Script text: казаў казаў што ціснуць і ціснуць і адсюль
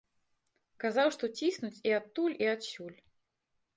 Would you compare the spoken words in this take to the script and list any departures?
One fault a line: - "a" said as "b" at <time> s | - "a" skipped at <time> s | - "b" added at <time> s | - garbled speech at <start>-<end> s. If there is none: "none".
- "казаў" skipped at 1.1 s
- "ціснуць" said as "адтуль" at 2.0 s